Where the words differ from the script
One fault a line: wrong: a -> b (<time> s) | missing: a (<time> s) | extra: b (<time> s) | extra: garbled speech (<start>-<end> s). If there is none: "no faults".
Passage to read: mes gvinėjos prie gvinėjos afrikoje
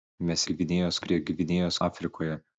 no faults